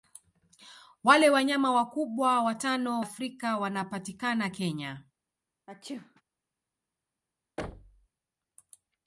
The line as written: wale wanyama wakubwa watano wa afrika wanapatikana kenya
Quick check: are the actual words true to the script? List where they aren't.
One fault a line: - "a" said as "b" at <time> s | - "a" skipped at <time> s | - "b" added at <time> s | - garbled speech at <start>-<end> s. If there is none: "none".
- "wa" skipped at 3.0 s